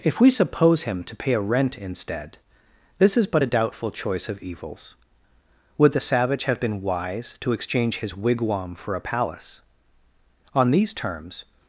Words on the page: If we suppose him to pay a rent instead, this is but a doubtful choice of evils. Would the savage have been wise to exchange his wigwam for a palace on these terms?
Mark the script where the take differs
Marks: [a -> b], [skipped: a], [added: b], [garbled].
If we suppose him to pay a rent instead, this is but a doubtful choice of evils. Would the savage have been wise to exchange his wigwam for a palace on these terms?